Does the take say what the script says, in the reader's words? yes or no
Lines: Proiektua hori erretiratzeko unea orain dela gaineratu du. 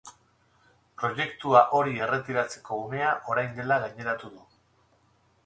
yes